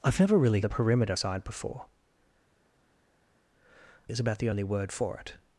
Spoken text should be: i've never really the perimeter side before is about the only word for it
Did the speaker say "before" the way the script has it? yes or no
yes